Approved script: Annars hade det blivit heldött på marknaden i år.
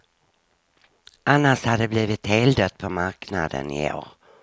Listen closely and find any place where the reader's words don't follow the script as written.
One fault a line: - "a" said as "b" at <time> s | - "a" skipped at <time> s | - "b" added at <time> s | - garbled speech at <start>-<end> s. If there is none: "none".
none